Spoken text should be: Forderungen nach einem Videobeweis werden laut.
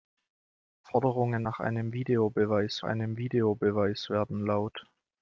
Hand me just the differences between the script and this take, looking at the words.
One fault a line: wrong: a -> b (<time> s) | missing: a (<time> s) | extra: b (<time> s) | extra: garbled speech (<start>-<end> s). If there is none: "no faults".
extra: einem Videobeweis (2.8 s)